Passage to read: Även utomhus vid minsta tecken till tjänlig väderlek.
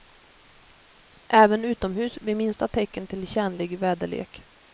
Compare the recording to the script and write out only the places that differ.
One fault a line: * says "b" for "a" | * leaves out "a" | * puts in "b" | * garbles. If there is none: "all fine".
all fine